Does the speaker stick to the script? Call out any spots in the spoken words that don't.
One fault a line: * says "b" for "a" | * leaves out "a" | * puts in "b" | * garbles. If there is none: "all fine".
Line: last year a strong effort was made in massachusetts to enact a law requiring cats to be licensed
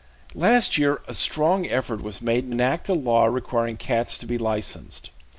* leaves out "massachusetts to"